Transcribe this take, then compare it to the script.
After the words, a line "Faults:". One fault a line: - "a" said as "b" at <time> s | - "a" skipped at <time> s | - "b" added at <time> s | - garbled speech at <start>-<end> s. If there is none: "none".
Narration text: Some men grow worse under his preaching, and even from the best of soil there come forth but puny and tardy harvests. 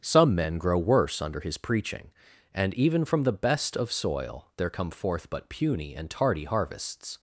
Some men grow worse under his preaching, and even from the best of soil there come forth but puny and tardy harvests.
Faults:
none